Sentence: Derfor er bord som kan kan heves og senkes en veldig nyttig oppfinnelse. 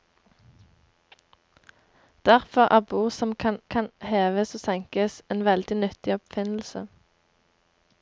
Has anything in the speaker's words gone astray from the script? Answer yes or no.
no